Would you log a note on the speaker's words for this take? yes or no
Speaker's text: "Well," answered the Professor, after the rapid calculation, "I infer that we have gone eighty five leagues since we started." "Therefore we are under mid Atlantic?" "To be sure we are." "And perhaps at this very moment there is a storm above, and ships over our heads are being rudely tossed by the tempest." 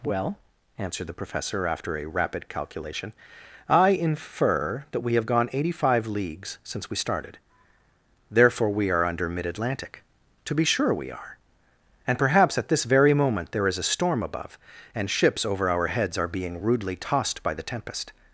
yes